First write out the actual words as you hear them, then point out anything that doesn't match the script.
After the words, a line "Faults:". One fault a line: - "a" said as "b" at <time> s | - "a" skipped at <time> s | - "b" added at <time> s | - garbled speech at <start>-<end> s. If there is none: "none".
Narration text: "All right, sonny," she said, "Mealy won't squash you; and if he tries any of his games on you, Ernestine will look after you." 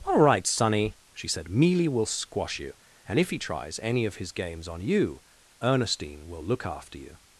"All right, sonny," she said, "Mealy will squash you; and if he tries any of his games on you, Ernestine will look after you."
Faults:
- "won't" said as "will" at 1.9 s